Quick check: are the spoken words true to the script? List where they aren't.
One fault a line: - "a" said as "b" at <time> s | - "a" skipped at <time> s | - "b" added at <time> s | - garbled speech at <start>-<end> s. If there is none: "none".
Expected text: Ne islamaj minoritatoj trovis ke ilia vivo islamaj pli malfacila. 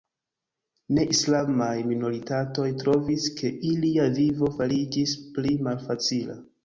- "islamaj" said as "fariĝis" at 4.6 s